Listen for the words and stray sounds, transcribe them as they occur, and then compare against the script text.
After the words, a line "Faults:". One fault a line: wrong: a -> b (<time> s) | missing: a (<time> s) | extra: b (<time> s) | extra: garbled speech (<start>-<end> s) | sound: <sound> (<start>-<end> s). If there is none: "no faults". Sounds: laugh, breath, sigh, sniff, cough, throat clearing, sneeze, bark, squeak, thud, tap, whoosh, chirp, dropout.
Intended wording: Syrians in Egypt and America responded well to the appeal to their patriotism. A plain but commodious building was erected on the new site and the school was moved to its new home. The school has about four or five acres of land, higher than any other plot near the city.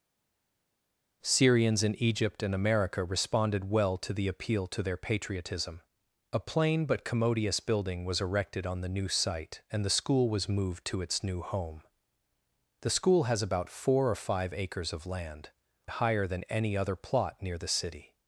Syrians in Egypt and America responded well to the appeal to their patriotism. A plain but commodious building was erected on the new site and the school was moved to its new home. The school has about four or five acres of land, higher than any other plot near the city.
Faults:
no faults